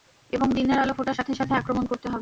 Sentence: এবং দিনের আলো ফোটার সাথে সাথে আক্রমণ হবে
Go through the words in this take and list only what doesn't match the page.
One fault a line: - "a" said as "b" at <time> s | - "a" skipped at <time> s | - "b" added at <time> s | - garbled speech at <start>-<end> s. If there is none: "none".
- "করতে" added at 1.9 s